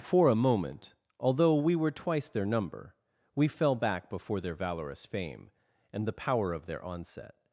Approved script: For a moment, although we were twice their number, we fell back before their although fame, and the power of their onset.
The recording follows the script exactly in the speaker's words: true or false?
false